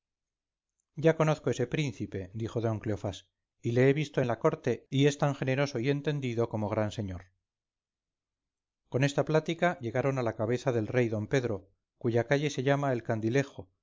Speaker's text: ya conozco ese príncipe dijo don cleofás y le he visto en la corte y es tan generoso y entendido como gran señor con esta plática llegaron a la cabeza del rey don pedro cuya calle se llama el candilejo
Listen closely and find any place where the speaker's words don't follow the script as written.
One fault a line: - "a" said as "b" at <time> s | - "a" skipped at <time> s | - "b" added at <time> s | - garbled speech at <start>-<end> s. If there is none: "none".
none